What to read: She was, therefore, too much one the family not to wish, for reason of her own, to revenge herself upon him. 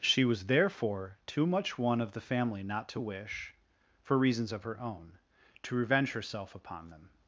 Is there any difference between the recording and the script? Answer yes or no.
yes